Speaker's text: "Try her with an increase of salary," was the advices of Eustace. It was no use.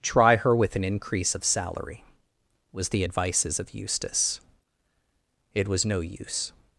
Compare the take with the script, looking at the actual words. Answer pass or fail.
pass